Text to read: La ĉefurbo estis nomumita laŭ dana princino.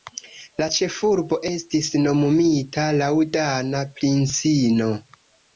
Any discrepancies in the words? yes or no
no